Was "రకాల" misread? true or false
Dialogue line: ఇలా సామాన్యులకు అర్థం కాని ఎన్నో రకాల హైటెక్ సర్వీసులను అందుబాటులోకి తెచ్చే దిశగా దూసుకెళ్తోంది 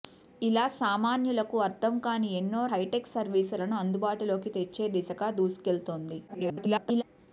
true